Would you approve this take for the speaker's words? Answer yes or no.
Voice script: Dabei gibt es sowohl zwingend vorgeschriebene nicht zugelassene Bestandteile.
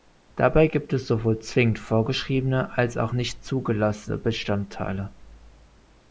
no